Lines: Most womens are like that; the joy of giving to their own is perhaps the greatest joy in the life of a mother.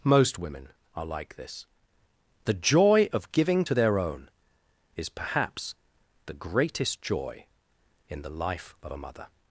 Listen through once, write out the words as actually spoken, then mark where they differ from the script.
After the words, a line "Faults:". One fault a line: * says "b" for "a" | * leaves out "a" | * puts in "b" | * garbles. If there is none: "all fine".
Most women are like this; the joy of giving to their own is perhaps the greatest joy in the life of a mother.
Faults:
* says "women" for "womens"
* says "this" for "that"